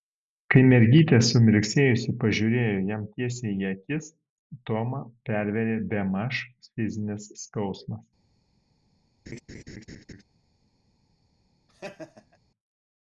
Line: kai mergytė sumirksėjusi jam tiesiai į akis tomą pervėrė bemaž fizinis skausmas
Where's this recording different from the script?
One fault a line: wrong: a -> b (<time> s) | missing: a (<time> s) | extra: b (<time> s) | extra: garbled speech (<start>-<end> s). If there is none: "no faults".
extra: pažiūrėjo (2.2 s)